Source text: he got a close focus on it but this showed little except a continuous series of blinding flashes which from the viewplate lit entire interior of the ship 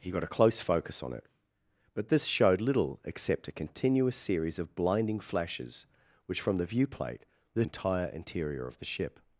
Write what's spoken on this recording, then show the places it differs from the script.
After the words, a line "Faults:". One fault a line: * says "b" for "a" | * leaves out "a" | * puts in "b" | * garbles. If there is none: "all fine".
he got a close focus on it but this showed little except a continuous series of blinding flashes which from the viewplate lit entire interior of the ship
Faults:
all fine